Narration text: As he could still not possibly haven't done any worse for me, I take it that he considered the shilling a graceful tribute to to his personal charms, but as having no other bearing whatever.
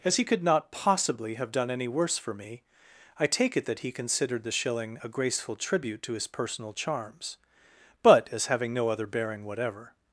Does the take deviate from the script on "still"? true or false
true